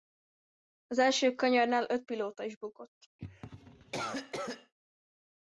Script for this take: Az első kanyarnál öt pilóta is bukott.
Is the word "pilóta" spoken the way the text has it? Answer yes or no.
yes